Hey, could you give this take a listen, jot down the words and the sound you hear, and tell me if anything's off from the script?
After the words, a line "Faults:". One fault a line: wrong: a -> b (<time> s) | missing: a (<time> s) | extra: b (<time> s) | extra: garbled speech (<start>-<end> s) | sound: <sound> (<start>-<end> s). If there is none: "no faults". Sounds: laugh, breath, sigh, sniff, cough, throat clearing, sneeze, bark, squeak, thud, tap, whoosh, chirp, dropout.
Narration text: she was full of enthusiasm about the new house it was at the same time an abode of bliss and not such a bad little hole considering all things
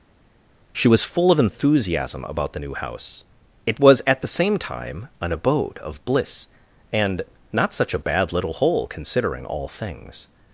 she was full of enthusiasm about the new house it was at the same time an abode of bliss and not such a bad little hole considering all things
Faults:
no faults